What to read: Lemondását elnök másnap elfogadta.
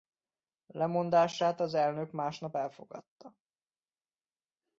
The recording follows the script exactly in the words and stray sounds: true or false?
false